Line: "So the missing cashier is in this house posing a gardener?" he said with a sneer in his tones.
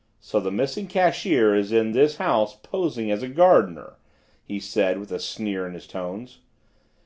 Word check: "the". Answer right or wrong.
right